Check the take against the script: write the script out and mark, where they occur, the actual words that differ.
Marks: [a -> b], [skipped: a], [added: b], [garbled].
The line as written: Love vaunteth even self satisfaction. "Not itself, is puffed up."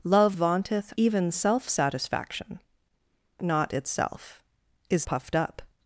Love vaunteth even self satisfaction. "Not itself, is puffed up."